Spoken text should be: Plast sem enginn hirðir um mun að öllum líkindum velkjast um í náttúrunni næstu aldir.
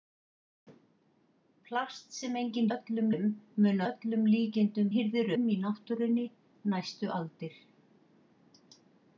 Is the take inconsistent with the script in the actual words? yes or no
yes